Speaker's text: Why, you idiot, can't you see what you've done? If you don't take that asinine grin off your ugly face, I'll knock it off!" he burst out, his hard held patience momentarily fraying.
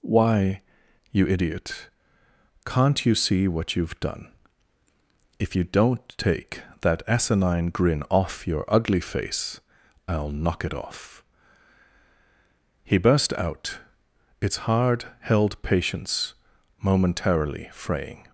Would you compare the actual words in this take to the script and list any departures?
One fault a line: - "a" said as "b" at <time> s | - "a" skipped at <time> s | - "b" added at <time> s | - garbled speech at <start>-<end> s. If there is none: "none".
- "his" said as "its" at 14.4 s